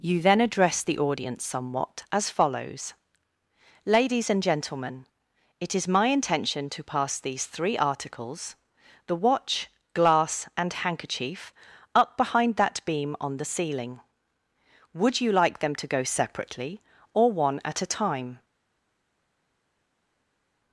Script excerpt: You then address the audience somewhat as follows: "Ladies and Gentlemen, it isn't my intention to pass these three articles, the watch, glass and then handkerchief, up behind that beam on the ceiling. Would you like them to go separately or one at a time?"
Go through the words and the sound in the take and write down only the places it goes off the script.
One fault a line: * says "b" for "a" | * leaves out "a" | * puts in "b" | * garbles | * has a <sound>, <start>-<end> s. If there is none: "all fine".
* says "is" for "isn't"
* leaves out "then"